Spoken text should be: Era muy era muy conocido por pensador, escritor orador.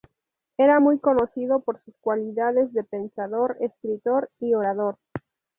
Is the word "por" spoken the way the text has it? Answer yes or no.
no